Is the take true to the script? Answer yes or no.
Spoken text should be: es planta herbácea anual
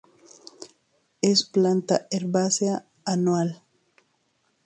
yes